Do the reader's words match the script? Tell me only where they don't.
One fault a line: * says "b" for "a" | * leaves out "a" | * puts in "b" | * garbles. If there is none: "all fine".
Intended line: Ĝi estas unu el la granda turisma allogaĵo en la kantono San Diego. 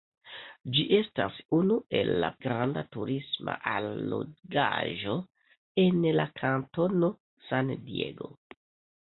all fine